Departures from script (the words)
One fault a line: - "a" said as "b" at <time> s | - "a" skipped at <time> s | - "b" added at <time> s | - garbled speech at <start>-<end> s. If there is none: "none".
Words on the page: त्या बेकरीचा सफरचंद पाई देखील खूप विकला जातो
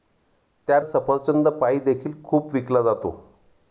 - "बेकरीचा" skipped at 0.8 s